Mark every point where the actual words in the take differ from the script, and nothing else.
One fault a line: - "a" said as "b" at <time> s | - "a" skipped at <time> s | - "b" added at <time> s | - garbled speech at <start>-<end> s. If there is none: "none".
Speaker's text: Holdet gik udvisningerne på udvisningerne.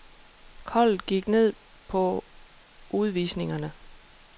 - "udvisningerne" said as "ned" at 1.3 s